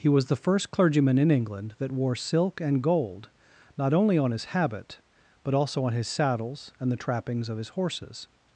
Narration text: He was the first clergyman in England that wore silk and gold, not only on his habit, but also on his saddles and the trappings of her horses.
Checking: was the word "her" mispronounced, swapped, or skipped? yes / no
yes